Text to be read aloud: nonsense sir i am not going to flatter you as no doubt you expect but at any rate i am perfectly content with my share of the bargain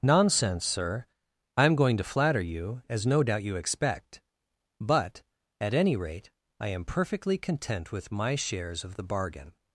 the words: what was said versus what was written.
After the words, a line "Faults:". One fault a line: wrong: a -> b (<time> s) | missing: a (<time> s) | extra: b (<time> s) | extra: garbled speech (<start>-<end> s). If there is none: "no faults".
nonsense sir i am going to flatter you as no doubt you expect but at any rate i am perfectly content with my shares of the bargain
Faults:
missing: not (1.8 s)
wrong: share -> shares (8.4 s)